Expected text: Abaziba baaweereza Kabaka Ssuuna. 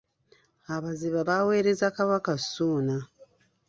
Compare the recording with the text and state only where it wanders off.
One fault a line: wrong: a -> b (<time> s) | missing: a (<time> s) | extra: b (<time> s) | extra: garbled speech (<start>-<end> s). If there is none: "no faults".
no faults